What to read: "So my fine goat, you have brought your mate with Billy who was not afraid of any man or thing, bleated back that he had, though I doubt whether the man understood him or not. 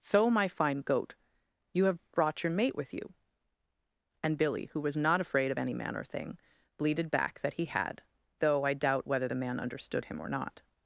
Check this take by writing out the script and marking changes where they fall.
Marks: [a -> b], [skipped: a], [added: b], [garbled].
"So my fine goat, you have brought your mate with [added: you And] Billy who was not afraid of any man or thing, bleated back that he had, though I doubt whether the man understood him or not.